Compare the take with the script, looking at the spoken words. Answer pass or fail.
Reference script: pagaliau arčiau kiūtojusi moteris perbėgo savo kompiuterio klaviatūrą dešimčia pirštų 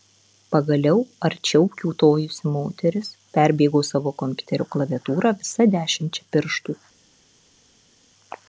fail